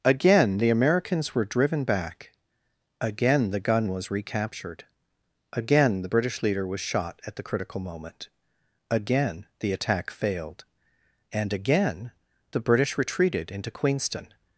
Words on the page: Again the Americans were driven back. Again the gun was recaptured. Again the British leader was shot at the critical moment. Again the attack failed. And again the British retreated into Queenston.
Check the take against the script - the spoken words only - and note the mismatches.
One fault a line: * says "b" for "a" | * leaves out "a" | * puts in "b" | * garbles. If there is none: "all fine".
all fine